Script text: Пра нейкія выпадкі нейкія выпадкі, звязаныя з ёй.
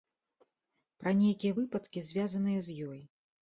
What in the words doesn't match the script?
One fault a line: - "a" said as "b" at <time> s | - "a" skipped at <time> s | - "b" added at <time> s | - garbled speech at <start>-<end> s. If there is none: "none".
- "нейкія выпадкі" skipped at 2.1 s